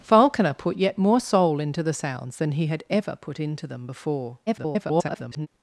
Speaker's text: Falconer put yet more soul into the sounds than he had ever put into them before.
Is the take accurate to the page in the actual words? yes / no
no